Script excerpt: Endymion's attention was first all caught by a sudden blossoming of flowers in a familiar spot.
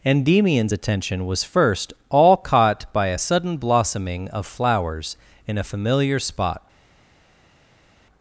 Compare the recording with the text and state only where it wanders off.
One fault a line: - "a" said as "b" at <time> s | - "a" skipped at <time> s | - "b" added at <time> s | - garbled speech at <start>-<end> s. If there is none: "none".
none